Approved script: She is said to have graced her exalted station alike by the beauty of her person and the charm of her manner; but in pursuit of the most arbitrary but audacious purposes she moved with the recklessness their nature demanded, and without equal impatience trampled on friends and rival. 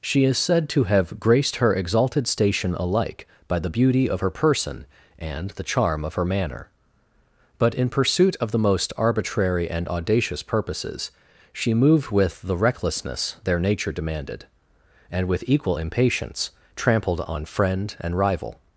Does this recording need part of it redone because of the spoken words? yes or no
yes